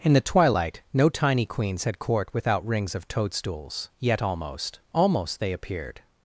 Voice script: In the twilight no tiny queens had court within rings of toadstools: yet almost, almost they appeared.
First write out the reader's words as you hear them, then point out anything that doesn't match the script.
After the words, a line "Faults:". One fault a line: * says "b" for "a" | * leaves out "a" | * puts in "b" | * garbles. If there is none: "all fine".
In the twilight no tiny queens had court without rings of toadstools: yet almost, almost they appeared.
Faults:
* says "without" for "within"